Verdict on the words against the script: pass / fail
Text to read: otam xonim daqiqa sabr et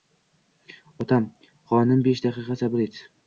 fail